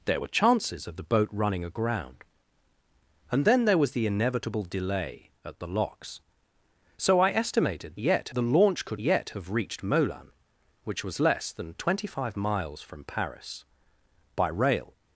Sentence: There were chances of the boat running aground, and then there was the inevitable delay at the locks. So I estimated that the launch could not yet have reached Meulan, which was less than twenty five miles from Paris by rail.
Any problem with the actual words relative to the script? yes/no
yes